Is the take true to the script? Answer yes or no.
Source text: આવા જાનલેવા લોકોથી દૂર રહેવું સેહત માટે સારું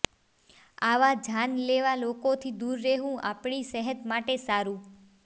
no